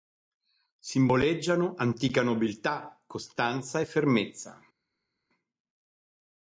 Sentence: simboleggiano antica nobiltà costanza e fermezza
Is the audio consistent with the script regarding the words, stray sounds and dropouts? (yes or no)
yes